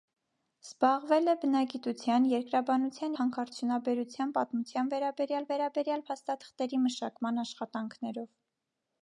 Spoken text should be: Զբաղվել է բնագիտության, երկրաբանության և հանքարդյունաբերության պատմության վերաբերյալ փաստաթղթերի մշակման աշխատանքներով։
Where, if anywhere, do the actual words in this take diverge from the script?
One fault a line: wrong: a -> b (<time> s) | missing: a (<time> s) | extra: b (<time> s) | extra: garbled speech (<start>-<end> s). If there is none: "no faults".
missing: և (3.2 s)
extra: վերաբերյալ (5.5 s)